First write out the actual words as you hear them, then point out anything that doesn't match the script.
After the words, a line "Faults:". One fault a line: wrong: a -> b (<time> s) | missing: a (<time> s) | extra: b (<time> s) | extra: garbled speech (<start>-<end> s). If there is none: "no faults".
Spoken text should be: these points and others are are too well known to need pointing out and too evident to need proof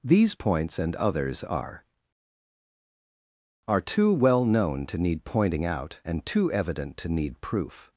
these points and others are are too well known to need pointing out and too evident to need proof
Faults:
no faults